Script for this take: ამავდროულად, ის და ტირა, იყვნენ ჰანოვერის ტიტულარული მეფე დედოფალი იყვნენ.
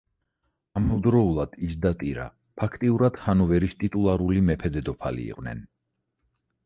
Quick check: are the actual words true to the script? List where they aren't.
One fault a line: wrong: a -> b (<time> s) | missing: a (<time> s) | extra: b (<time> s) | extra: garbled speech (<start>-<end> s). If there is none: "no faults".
wrong: იყვნენ -> ფაქტიურად (2.6 s)